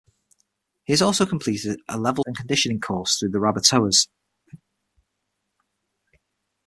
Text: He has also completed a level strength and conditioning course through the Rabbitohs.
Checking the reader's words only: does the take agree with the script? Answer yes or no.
no